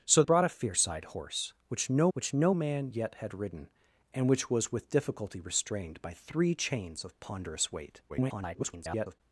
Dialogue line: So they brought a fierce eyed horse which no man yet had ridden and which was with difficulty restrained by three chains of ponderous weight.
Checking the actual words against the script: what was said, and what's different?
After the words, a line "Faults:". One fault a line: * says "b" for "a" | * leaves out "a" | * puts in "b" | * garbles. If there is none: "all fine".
So brought a fierce eyed horse which no which no man yet had ridden and which was with difficulty restrained by three chains of ponderous weight. [garbled]
Faults:
* leaves out "they"
* puts in "which no"
* garbles